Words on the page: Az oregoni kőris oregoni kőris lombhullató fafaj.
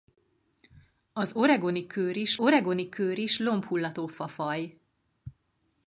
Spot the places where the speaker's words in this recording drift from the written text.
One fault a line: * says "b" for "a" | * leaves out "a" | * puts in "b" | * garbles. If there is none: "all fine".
all fine